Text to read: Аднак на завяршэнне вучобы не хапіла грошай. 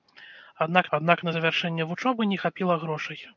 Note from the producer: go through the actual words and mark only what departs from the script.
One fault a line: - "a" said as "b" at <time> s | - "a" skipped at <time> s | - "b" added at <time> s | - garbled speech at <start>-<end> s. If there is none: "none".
- "аднак" added at 1.0 s